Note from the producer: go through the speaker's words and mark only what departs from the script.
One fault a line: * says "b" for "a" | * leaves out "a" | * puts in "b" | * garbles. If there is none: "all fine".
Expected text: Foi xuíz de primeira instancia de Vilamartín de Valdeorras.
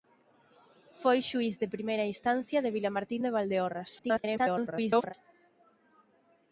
* garbles